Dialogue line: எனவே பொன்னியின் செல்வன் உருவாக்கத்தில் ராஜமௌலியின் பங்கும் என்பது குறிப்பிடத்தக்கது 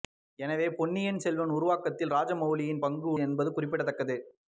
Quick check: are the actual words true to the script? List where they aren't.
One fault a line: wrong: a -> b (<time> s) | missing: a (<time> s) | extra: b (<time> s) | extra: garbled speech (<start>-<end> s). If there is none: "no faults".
no faults